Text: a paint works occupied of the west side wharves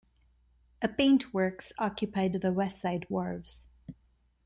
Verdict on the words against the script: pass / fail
pass